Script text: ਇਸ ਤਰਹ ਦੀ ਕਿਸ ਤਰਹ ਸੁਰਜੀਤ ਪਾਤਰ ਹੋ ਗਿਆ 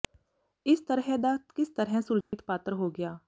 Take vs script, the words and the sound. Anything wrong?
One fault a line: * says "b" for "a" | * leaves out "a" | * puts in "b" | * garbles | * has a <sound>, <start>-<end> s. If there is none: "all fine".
* says "ਦਾ" for "ਦੀ"
* has a dropout, 2.2-2.3 s